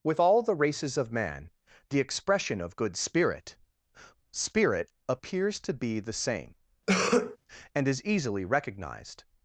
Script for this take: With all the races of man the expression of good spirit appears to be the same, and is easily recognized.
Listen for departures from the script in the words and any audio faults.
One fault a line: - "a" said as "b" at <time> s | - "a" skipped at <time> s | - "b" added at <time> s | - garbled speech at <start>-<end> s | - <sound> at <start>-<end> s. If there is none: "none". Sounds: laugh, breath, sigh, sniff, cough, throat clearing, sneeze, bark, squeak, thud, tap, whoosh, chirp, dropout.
- "spirit" added at 4.3 s
- cough at 6.9-7.4 s